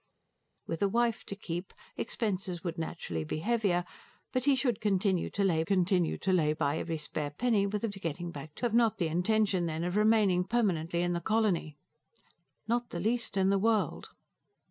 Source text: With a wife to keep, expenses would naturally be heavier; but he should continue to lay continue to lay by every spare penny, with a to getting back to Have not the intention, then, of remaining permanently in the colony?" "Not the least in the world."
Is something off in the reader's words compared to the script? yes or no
no